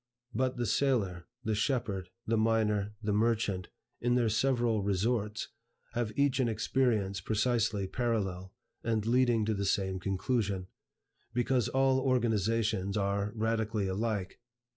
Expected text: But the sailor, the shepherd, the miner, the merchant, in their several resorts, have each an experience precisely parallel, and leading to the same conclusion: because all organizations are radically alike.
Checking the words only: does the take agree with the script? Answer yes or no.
yes